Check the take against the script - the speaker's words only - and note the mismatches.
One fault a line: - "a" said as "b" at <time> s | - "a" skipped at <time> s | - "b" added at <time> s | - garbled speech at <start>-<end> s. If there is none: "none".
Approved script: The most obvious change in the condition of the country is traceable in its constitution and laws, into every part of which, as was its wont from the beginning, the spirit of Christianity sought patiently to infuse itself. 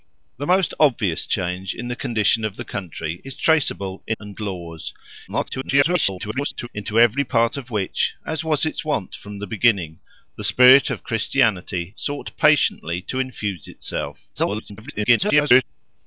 - "its constitution" skipped at 4.2 s
- garbled speech at 5.3-6.7 s
- garbled speech at 14.4-15.6 s